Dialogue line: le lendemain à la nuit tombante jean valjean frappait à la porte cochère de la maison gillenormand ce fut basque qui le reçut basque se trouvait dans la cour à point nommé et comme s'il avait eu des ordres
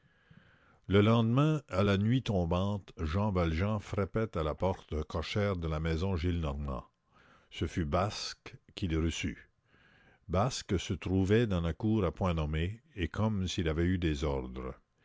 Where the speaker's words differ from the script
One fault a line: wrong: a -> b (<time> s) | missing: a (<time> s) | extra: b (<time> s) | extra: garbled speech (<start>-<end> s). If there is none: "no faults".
no faults